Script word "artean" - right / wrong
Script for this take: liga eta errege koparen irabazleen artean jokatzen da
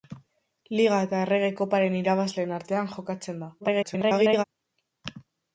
right